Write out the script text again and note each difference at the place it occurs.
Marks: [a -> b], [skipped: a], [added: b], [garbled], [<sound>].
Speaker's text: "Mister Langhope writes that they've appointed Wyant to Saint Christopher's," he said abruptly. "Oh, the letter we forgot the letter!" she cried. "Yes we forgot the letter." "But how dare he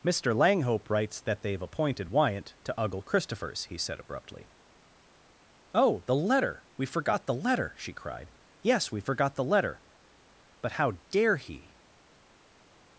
"Mister Langhope writes that they've appointed Wyant to [Saint -> Uggle] Christopher's," he said abruptly. "Oh, the letter we forgot the letter!" she cried. "Yes we forgot the letter." "But how dare he